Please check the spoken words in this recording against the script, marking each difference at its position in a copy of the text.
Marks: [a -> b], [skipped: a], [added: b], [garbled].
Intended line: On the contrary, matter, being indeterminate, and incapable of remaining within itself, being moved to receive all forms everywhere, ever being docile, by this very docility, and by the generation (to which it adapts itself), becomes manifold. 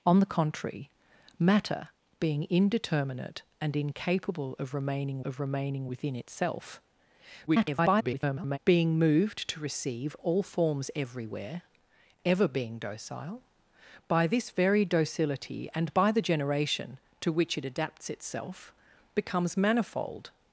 On the contrary, matter, being indeterminate, and incapable of remaining [added: of remaining] within itself, [garbled] being moved to receive all forms everywhere, ever being docile, by this very docility, and by the generation (to which it adapts itself), becomes manifold.